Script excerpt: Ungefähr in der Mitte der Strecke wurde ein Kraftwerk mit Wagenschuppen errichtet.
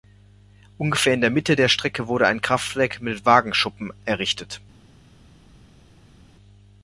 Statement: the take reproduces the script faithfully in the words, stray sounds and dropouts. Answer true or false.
true